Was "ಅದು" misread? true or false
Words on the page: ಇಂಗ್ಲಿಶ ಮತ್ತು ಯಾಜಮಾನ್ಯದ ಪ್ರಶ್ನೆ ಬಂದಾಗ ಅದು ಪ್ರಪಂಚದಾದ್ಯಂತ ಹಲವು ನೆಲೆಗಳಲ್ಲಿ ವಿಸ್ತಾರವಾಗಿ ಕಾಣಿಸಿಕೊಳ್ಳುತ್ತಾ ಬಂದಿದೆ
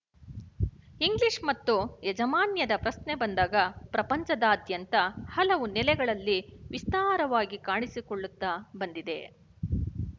true